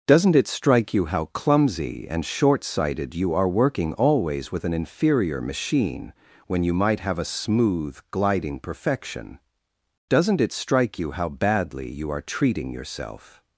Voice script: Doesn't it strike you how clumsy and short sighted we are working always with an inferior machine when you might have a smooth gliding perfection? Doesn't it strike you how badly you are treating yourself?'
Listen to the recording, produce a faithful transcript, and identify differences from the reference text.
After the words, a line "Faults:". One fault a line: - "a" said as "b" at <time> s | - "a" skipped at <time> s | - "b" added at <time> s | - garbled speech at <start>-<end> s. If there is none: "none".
Doesn't it strike you how clumsy and short sighted you are working always with an inferior machine when you might have a smooth gliding perfection? Doesn't it strike you how badly you are treating yourself?'
Faults:
- "we" said as "you" at 3.1 s